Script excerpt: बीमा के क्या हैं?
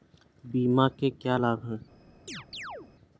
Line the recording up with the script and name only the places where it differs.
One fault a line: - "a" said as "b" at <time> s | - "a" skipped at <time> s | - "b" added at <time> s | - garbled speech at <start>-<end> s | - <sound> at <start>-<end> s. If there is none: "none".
- "लाभ" added at 1.3 s
- chirp at 2.3-2.9 s